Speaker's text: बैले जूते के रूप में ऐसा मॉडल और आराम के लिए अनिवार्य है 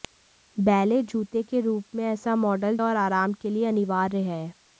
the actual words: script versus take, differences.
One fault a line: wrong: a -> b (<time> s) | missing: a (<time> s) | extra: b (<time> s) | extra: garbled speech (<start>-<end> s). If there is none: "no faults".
no faults